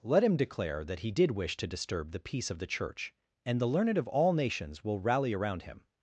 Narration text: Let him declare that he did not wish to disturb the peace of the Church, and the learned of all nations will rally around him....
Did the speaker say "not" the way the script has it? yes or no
no